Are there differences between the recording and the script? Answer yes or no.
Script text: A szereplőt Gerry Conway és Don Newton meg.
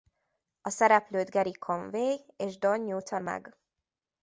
no